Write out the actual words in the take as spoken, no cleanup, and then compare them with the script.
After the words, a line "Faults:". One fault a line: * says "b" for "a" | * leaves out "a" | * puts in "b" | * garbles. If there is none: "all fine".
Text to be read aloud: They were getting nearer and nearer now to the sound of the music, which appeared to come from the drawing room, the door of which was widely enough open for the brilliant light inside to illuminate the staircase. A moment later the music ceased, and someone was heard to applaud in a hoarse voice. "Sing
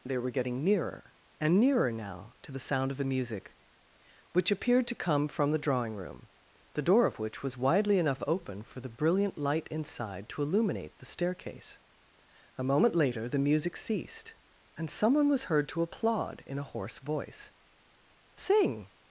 They were getting nearer and nearer now to the sound of the music, which appeared to come from the drawing room, the door of which was widely enough open for the brilliant light inside to illuminate the staircase. A moment later the music ceased, and someone was heard to applaud in a hoarse voice. "Sing
Faults:
all fine